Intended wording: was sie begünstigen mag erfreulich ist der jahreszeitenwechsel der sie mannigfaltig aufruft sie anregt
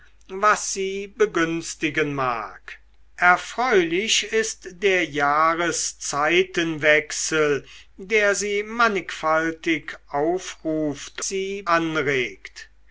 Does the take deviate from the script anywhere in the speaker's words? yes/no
no